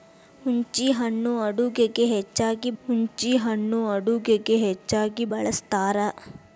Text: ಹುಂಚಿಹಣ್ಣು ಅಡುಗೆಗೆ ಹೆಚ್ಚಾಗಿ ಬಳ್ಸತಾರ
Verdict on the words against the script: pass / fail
fail